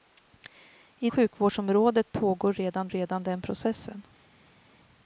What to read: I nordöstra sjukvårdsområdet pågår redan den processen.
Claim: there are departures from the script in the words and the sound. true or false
true